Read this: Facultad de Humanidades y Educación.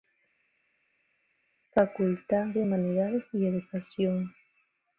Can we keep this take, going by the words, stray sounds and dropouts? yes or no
yes